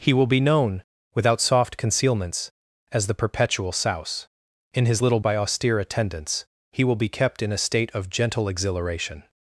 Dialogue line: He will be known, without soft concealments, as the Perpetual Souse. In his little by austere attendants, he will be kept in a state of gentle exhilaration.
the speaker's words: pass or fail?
pass